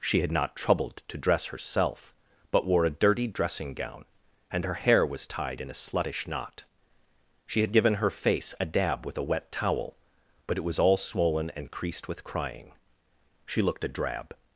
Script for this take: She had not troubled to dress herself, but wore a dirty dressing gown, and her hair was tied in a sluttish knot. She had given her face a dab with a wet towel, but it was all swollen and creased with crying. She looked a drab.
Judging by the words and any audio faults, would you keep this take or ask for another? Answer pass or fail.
pass